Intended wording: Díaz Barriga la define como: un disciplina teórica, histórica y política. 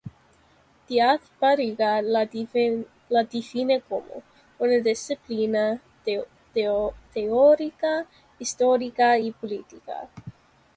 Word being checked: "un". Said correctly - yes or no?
no